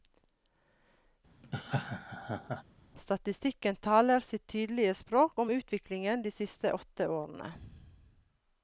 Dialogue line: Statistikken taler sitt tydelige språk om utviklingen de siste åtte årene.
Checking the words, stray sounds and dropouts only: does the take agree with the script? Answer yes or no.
no